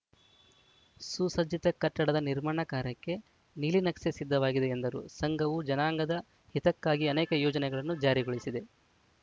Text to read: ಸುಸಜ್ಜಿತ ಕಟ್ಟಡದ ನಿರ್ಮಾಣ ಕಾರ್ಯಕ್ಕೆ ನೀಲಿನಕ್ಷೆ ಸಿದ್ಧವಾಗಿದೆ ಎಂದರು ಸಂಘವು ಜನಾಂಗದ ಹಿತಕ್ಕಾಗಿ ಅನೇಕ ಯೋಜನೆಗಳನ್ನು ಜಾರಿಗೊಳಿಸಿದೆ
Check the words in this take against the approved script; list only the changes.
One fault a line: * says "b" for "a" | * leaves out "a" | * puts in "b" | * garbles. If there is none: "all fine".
all fine